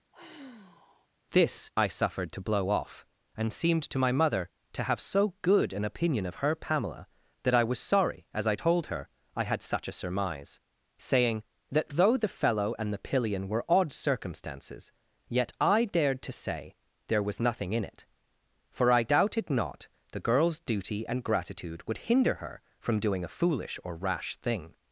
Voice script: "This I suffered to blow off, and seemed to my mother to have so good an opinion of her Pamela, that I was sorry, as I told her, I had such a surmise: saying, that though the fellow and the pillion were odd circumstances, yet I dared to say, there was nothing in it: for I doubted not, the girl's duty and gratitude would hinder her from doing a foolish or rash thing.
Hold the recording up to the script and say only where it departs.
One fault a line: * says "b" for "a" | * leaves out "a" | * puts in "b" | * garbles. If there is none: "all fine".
all fine